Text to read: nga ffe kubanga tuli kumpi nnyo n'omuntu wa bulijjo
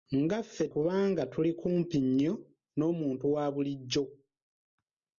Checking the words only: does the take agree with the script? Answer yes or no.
yes